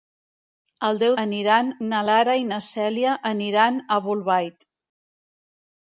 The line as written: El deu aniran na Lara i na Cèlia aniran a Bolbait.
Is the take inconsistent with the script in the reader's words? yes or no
no